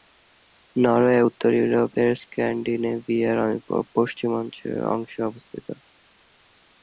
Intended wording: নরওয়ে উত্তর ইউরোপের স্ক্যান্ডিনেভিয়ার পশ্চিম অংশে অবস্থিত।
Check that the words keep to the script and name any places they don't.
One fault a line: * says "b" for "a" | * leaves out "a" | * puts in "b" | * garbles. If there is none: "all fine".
all fine